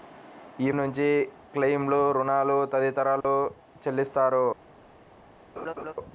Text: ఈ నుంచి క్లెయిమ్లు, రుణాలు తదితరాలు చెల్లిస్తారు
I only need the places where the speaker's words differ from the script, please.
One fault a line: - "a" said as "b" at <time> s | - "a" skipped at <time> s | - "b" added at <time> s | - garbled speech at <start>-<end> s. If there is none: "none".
none